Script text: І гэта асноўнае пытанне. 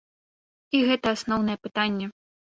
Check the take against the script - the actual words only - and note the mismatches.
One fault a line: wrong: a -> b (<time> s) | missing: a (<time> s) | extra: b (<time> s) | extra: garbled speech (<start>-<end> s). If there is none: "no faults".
no faults